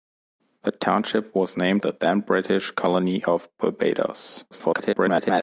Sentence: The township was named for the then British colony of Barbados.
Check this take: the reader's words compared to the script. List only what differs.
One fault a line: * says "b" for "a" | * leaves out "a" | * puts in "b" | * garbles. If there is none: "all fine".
* leaves out "for"
* garbles